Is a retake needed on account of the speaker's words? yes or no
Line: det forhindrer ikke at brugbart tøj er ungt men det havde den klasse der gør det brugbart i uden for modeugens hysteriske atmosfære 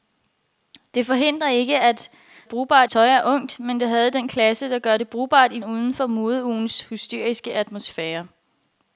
no